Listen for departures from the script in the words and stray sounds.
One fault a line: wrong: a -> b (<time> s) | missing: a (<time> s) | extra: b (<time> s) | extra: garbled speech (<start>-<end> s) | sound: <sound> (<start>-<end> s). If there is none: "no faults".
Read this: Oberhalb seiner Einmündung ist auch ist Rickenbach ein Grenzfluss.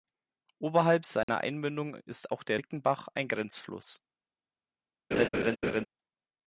sound: dropout (1.2-1.3 s)
wrong: ist -> der (2.4 s)
sound: laugh (5.1-5.9 s)